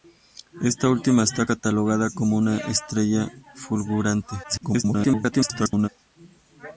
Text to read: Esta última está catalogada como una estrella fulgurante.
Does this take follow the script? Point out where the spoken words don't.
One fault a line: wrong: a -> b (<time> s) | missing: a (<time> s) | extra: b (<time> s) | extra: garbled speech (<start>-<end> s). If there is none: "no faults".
extra: garbled speech (4.4-5.9 s)